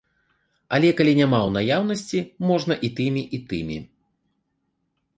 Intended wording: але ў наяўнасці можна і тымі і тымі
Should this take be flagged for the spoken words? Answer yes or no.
yes